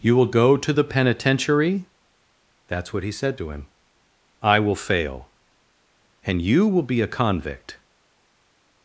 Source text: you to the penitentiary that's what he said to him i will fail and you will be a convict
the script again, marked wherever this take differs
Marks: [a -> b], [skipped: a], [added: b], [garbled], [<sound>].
you [added: will go] to the penitentiary that's what he said to him i will fail and you will be a convict